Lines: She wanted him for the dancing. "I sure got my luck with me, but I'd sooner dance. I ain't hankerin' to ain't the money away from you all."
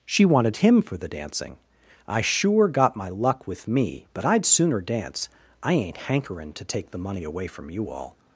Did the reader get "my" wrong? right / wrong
right